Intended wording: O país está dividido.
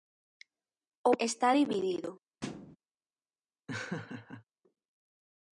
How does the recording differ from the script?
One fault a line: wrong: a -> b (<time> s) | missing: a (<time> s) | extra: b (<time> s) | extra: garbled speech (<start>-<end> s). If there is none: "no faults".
missing: país (1.1 s)